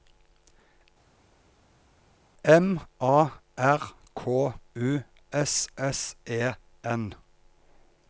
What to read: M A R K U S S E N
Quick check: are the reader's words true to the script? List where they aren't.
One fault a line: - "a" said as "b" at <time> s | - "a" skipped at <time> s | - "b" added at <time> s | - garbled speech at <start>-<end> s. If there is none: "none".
none